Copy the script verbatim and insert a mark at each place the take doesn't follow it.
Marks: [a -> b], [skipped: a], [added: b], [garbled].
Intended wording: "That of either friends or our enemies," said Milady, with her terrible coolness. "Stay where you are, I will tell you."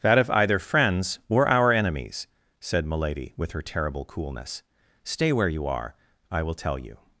"That of either friends or our enemies," said Milady, with her terrible coolness. "Stay where you are, I will tell you."